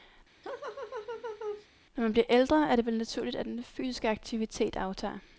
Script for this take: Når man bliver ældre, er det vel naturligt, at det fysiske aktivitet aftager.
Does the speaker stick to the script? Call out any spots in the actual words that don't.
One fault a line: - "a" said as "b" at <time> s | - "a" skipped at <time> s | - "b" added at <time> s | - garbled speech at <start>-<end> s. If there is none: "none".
- "det" said as "den" at 3.5 s